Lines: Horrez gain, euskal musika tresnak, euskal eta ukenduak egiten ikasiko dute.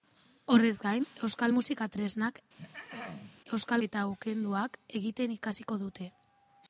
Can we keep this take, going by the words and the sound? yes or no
no